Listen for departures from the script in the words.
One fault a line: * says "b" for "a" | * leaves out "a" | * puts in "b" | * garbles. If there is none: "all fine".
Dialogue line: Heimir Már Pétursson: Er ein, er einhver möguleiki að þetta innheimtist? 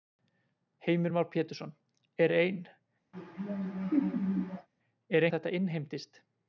* leaves out "einhver möguleiki"